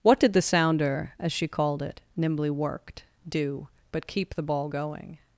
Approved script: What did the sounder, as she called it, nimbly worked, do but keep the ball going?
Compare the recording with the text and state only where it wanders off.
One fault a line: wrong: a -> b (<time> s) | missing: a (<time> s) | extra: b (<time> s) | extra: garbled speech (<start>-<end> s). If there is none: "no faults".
no faults